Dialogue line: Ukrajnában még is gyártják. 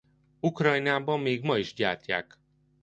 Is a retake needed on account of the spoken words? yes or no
yes